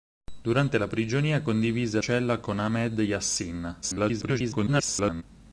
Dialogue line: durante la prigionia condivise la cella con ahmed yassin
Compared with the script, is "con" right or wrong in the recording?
right